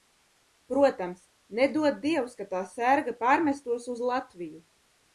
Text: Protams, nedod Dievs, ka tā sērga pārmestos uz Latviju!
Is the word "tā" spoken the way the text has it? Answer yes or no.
yes